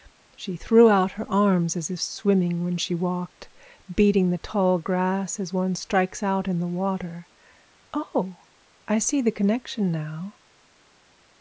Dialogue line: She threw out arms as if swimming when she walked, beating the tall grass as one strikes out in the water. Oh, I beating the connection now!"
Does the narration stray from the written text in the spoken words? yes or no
yes